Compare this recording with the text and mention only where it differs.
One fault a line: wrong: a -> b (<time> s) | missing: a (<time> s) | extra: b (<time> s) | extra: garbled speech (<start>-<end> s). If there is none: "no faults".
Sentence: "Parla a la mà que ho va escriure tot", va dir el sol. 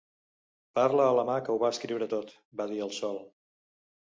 no faults